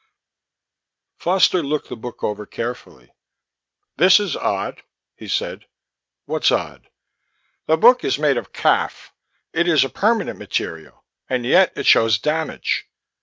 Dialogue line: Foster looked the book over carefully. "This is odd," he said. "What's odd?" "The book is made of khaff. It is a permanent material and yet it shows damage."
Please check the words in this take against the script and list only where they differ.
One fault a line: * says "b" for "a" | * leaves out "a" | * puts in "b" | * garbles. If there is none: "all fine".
all fine